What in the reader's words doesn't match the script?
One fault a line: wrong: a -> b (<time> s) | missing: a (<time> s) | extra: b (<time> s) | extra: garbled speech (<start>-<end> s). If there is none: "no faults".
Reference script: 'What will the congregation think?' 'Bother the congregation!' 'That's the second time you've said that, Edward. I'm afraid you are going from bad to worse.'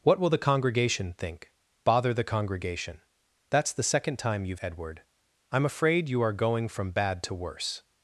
missing: said that (4.6 s)